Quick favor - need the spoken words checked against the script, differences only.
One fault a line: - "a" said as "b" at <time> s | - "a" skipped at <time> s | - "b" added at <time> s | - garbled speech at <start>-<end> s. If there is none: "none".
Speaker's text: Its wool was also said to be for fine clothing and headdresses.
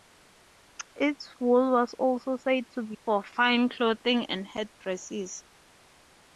none